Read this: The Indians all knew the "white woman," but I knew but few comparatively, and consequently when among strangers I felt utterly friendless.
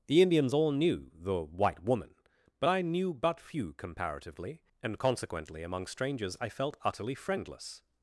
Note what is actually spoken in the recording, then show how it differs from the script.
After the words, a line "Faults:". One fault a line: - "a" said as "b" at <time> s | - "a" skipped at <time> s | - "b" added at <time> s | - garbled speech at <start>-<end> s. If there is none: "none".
The Indians all knew the "white woman," but I knew but few comparatively, and consequently among strangers I felt utterly friendless.
Faults:
- "when" skipped at 5.6 s